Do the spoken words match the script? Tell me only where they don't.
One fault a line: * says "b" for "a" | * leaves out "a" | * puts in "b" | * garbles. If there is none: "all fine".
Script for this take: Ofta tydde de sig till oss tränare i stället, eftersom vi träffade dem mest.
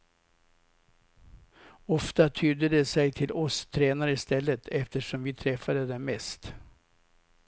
all fine